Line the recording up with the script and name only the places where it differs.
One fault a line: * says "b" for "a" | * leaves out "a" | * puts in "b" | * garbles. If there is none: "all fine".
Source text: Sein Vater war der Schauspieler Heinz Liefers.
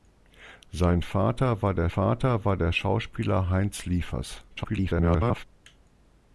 * puts in "Vater war der"
* garbles